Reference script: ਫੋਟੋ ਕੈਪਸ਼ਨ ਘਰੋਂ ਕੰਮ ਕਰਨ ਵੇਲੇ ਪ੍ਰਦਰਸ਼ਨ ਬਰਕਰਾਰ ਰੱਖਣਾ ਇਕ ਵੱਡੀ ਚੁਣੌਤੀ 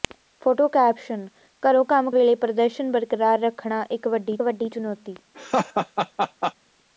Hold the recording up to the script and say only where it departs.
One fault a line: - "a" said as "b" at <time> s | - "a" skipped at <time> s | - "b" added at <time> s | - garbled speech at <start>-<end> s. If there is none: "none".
- "ਕਰਨ" skipped at 2.1 s
- "ਵੱਡੀ" added at 4.4 s